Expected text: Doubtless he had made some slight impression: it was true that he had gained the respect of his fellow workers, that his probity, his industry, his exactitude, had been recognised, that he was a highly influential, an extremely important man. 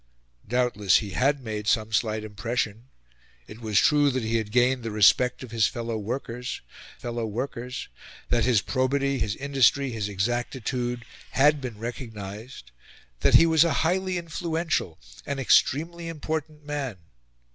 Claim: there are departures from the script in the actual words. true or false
true